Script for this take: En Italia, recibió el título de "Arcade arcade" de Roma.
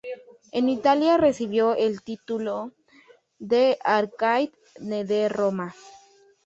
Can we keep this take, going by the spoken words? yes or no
no